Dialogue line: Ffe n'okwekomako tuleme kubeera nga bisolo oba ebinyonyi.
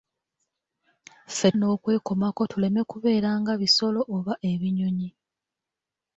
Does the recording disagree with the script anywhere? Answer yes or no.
no